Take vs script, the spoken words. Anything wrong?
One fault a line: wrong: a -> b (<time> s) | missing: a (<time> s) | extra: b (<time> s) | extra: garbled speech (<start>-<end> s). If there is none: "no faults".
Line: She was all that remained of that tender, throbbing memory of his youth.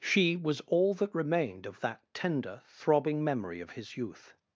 no faults